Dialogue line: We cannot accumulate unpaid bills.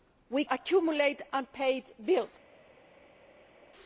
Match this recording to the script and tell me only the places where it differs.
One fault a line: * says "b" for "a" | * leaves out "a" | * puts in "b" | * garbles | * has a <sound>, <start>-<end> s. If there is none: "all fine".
* leaves out "cannot"